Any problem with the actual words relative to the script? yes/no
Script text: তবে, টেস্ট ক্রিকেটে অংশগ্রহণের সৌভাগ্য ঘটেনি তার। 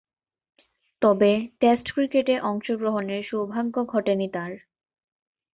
no